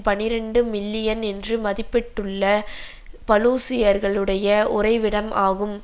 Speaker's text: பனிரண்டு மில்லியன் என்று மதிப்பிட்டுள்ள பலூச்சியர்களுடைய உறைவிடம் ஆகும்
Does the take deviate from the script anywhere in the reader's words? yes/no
no